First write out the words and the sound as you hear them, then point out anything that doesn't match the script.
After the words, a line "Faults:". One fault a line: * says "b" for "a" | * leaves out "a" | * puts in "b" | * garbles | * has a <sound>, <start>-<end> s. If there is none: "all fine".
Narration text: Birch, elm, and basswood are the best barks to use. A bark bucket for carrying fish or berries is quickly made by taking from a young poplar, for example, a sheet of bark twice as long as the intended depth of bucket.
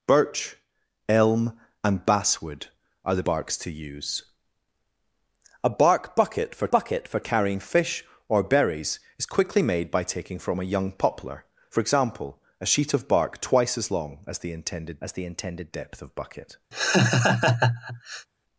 Birch, elm, and basswood are the barks to use. A bark bucket for bucket for carrying fish or berries is quickly made by taking from a young poplar, for example, a sheet of bark twice as long as the intended as the intended depth of bucket.
Faults:
* leaves out "best"
* puts in "bucket for"
* puts in "as the intended"
* has a laugh, 16.7-18.3 s